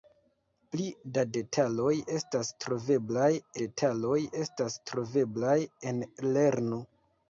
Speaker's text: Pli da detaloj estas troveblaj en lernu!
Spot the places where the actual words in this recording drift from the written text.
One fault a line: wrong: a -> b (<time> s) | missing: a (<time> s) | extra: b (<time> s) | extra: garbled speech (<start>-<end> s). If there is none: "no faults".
extra: detaloj estas troveblaj (3.6 s)